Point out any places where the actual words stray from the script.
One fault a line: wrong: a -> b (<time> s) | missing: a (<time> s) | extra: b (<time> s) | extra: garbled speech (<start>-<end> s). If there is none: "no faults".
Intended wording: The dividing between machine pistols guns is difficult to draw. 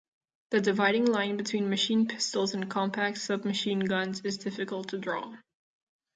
extra: line (1.1 s)
extra: and compact submachine (2.5 s)